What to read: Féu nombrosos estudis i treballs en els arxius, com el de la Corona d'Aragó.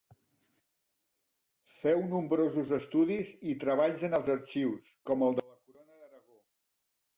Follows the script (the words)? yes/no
yes